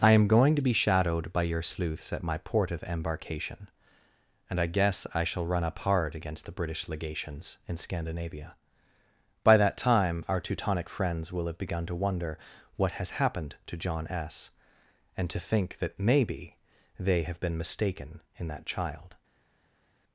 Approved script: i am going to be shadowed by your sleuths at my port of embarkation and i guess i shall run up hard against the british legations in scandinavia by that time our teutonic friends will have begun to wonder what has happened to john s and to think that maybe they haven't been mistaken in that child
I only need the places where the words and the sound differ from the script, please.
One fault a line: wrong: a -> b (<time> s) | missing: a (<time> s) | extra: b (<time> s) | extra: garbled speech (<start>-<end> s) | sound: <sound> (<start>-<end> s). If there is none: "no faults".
wrong: haven't -> have (17.2 s)